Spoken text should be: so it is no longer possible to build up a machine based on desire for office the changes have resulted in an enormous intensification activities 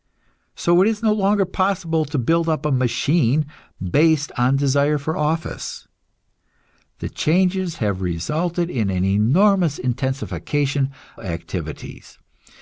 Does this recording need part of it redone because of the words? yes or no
no